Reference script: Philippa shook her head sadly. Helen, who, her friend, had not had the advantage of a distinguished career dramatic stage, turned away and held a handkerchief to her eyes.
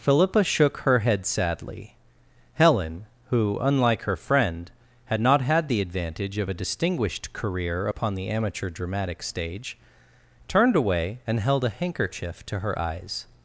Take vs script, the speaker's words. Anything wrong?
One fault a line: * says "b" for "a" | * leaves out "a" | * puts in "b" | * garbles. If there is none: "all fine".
* puts in "unlike"
* puts in "upon the amateur"